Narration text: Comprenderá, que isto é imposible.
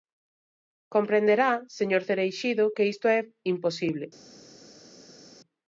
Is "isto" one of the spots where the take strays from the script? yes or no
no